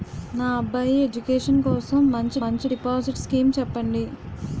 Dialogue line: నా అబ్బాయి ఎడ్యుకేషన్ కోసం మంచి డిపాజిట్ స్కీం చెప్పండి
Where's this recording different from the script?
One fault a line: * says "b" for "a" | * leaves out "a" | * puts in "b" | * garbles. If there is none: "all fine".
* puts in "మంచి"